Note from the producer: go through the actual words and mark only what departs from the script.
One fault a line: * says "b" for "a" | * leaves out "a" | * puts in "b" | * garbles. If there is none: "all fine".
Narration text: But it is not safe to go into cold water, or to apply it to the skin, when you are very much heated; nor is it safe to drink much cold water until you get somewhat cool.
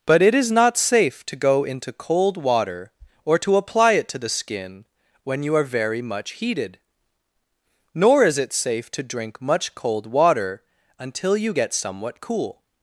all fine